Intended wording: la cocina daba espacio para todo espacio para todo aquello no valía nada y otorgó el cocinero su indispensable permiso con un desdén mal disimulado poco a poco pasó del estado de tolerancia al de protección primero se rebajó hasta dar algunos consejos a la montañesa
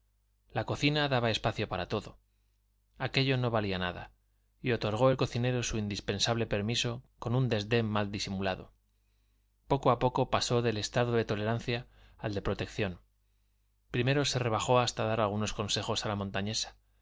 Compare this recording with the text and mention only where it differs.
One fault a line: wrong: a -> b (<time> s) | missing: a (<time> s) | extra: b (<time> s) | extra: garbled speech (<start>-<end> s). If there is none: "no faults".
missing: espacio para todo (2.2 s)